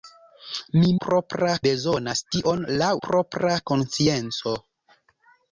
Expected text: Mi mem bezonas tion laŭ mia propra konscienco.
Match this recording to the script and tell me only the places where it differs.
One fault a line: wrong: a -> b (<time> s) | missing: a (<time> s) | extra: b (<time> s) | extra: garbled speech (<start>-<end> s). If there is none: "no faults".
wrong: mem -> propra (1.1 s)
missing: mia (2.9 s)